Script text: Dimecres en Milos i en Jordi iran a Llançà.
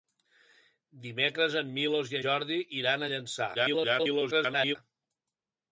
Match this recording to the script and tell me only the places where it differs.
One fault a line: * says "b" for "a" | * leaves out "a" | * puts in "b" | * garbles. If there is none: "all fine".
* leaves out "en"
* garbles